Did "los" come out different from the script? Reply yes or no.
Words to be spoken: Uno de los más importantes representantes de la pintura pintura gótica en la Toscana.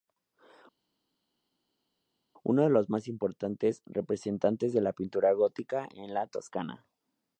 no